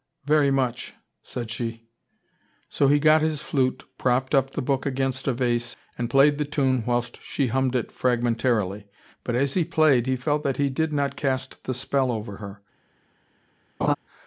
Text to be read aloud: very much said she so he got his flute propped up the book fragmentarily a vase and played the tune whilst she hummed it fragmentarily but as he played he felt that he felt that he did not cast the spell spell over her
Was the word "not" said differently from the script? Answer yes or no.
no